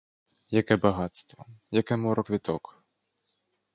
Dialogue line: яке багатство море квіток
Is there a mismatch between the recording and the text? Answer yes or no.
yes